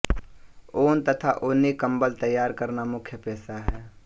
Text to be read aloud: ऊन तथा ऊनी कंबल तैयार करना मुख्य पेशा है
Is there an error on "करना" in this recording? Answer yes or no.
no